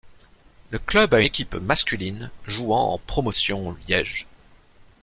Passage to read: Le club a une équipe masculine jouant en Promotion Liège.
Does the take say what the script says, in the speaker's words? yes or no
no